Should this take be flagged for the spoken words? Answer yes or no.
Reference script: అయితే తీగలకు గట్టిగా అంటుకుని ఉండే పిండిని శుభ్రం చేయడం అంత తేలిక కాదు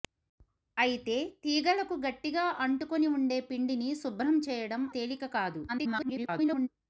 yes